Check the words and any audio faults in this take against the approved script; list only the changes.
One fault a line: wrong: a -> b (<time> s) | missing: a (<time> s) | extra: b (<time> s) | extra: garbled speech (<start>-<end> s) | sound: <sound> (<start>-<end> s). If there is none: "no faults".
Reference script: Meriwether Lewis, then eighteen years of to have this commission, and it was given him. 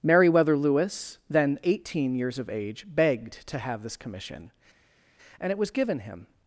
extra: age begged (2.5 s)